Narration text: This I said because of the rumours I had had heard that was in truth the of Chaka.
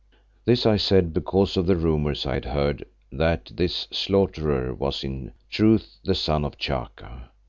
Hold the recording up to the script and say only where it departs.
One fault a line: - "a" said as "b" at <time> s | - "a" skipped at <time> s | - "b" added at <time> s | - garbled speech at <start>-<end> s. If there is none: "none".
- "had" skipped at 2.4 s
- "this Slaughterer" added at 3.5 s
- "son" added at 6.1 s